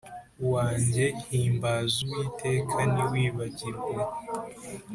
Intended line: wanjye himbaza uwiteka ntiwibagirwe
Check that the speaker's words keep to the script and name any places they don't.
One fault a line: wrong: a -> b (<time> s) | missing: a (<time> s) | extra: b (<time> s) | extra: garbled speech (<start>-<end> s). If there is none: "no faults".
no faults